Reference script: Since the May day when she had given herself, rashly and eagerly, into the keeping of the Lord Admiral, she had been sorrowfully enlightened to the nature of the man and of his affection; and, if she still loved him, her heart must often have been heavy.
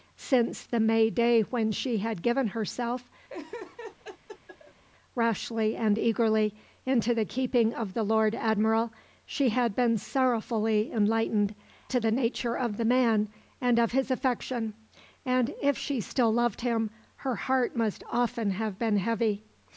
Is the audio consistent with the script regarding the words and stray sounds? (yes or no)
no